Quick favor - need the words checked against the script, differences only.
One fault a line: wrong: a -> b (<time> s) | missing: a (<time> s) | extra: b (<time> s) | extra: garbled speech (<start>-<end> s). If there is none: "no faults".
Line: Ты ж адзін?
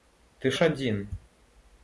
no faults